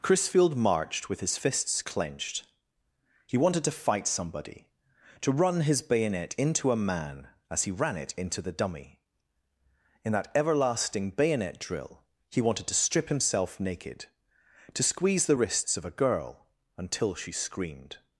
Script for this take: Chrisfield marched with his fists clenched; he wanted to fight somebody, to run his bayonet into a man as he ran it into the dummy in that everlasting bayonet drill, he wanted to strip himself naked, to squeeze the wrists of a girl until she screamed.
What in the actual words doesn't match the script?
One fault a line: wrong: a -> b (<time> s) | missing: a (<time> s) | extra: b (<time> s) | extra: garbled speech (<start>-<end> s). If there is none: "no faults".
no faults